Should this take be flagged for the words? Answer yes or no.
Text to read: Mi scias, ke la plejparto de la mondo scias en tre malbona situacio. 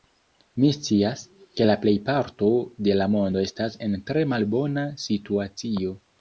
yes